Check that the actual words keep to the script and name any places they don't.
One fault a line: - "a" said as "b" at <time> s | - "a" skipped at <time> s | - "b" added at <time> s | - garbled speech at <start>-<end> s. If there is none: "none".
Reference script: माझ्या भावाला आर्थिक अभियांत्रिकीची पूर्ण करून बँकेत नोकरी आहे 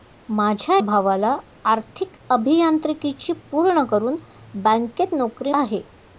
none